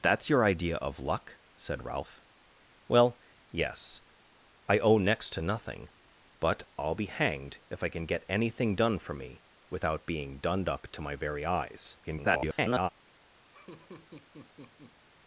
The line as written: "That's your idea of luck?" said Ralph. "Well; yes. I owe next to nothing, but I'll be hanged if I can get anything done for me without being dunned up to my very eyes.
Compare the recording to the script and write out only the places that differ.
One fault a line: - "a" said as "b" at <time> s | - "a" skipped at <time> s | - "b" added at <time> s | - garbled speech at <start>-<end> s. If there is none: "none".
- garbled speech at 12.0-12.9 s